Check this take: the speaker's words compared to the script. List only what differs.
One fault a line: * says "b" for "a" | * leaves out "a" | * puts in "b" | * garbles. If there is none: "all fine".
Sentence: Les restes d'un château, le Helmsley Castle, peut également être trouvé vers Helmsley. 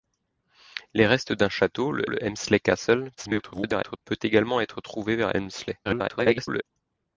* puts in "le"
* garbles
* garbles